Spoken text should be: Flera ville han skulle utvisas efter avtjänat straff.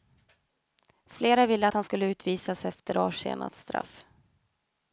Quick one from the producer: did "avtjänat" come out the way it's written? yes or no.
yes